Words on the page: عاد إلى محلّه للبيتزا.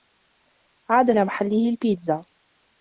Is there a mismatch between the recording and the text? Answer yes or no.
no